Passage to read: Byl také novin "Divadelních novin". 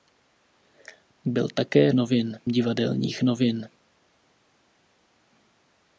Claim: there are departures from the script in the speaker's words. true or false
false